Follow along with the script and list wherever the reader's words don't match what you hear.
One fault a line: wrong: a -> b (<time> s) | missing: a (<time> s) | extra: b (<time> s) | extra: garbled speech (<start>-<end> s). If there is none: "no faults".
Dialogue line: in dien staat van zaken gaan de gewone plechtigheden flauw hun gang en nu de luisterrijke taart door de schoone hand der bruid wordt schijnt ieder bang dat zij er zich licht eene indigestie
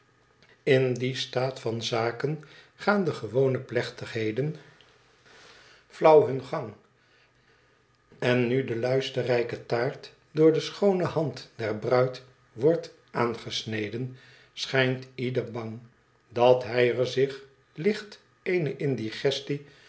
extra: aangesneden (13.1 s)
wrong: zij -> hij (16.6 s)